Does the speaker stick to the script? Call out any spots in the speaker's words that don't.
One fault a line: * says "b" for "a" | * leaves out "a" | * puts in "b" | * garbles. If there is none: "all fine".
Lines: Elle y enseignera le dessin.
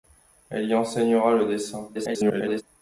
* garbles